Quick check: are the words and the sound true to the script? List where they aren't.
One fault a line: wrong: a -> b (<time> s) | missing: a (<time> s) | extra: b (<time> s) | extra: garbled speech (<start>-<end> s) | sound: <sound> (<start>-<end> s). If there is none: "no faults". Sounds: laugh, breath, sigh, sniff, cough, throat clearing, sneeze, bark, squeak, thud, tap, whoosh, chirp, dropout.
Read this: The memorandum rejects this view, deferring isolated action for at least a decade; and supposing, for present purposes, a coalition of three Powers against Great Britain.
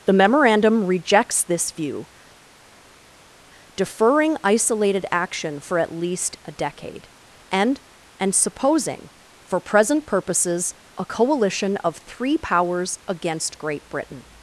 extra: and (8.2 s)